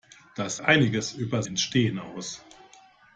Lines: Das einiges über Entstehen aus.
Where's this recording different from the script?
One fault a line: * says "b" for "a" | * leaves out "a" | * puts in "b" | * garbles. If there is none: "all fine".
all fine